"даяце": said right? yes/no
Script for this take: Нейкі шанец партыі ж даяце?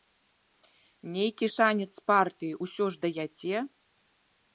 yes